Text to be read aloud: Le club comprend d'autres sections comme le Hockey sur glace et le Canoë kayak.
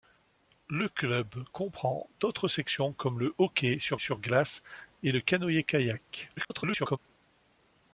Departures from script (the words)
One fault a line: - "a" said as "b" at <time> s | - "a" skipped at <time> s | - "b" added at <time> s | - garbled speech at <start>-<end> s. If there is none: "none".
- "sur" added at 4.0 s
- garbled speech at 6.4-7.0 s